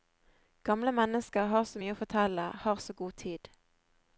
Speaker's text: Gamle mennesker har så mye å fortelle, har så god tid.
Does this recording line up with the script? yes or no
yes